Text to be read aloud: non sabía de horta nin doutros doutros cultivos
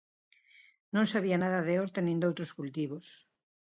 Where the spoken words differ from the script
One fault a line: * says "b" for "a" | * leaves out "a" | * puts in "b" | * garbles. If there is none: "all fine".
* puts in "nada"
* leaves out "doutros"